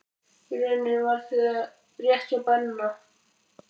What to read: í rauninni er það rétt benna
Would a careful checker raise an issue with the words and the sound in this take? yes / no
yes